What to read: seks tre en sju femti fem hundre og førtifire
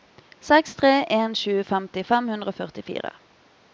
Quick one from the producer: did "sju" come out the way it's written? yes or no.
yes